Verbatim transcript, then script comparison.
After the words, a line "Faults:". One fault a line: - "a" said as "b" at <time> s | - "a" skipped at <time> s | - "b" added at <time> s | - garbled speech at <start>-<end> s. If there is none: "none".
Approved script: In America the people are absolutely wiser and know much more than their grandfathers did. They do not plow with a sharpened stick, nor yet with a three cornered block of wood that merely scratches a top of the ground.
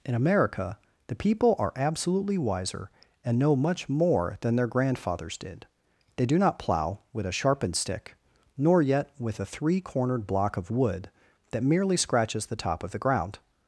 In America the people are absolutely wiser and know much more than their grandfathers did. They do not plow with a sharpened stick, nor yet with a three cornered block of wood that merely scratches the top of the ground.
Faults:
- "a" said as "the" at 12.5 s